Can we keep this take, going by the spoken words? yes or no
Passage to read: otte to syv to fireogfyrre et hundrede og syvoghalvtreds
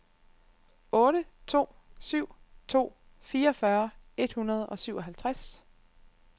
yes